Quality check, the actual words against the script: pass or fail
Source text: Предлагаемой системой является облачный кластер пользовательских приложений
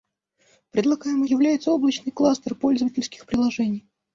fail